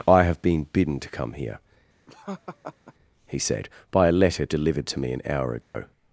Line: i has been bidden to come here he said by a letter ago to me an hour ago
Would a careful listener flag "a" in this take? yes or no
no